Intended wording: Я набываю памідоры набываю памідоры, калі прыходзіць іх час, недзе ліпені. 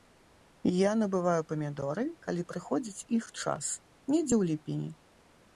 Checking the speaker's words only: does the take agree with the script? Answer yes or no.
no